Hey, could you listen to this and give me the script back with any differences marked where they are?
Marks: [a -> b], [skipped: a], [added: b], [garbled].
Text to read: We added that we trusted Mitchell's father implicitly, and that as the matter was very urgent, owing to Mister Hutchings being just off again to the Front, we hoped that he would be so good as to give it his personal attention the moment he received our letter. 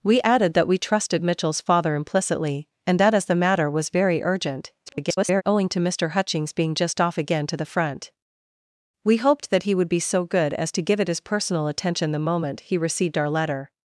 We added that we trusted Mitchell's father implicitly, and that as the matter was very urgent, [garbled] owing to Mister Hutchings being just off again to the Front, we hoped that he would be so good as to give it his personal attention the moment he received our letter.